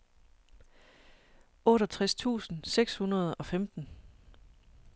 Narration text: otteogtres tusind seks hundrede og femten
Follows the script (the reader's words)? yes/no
yes